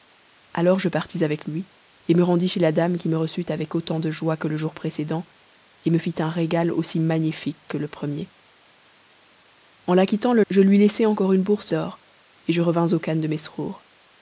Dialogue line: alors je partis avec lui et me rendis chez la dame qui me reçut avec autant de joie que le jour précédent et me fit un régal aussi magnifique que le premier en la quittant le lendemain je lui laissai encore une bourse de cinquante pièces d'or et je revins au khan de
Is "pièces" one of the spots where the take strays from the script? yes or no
yes